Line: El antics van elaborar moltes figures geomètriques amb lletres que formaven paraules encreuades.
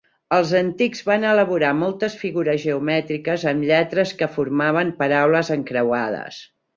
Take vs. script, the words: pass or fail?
fail